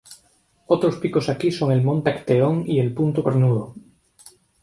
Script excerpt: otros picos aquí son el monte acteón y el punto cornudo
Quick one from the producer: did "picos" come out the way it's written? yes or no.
yes